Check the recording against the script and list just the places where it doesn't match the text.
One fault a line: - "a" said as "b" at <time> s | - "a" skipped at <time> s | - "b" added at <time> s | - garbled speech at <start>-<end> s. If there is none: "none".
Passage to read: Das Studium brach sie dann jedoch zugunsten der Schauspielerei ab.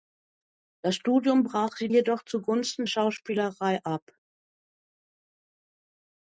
- "dann" skipped at 1.9 s
- "der" skipped at 2.9 s